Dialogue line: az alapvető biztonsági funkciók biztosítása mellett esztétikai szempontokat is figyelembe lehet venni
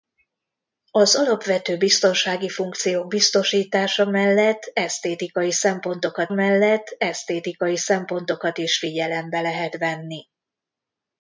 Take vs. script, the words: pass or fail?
fail